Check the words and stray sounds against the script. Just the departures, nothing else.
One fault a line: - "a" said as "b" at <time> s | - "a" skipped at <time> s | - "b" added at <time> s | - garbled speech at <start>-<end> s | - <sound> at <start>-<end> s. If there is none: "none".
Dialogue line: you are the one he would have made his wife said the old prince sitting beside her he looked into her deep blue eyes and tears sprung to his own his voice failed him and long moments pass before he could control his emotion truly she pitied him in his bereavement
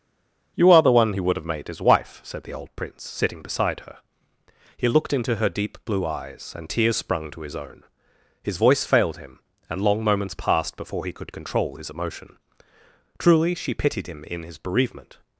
- "pass" said as "passed" at 10.3 s